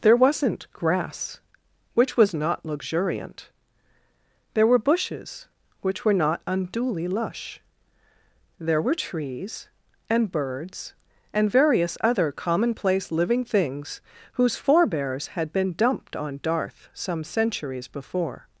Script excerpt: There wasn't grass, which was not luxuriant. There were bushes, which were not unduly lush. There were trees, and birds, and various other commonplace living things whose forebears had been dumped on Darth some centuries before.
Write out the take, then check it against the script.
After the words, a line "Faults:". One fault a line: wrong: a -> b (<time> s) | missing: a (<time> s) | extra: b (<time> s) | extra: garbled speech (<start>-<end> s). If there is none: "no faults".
There wasn't grass, which was not luxuriant. There were bushes, which were not unduly lush. There were trees, and birds, and various other commonplace living things whose forebears had been dumped on Darth some centuries before.
Faults:
no faults